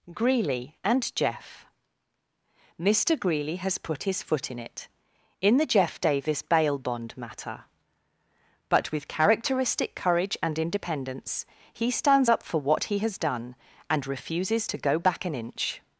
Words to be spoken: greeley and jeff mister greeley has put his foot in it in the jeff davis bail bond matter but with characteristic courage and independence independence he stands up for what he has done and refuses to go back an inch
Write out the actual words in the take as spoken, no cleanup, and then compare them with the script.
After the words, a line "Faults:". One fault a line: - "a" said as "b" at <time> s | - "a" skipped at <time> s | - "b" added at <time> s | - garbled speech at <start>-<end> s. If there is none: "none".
greeley and jeff mister greeley has put his foot in it in the jeff davis bail bond matter but with characteristic courage and independence he stands up for what he has done and refuses to go back an inch
Faults:
- "independence" skipped at 11.5 s